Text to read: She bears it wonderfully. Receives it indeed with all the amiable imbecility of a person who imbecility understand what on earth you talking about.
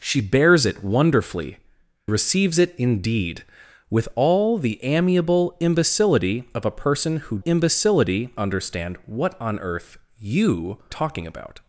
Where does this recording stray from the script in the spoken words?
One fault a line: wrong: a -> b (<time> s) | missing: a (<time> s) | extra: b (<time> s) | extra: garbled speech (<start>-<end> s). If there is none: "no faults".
no faults